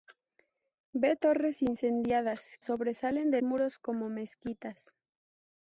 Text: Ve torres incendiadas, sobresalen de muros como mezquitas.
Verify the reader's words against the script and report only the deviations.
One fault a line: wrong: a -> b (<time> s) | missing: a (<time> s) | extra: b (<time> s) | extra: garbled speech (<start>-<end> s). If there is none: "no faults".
no faults